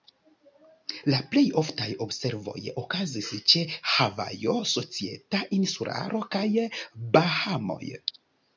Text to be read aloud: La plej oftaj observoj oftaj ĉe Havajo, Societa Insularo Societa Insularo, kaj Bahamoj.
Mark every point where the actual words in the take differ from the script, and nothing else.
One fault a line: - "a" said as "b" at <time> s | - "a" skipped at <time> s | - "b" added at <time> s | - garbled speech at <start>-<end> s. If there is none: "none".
- "oftaj" said as "okazis" at 2.8 s
- "Societa Insularo" skipped at 6.2 s